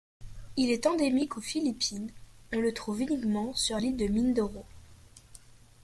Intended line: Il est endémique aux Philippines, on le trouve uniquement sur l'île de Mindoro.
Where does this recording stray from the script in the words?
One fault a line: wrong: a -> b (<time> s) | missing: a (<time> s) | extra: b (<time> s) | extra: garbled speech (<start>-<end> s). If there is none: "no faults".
no faults